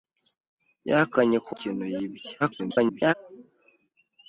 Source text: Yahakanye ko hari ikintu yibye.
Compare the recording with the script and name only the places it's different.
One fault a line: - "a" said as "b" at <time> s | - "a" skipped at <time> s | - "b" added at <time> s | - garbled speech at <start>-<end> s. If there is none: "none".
- "hari" skipped at 1.5 s
- garbled speech at 2.4-3.1 s